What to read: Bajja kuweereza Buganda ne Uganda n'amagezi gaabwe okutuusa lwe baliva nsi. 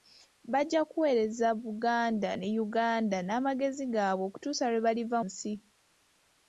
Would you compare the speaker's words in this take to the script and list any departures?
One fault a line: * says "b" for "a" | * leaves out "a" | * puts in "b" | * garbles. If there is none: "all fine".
all fine